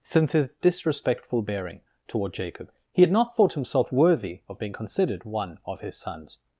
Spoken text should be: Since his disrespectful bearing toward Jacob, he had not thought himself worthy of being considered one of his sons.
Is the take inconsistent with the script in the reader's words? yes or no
no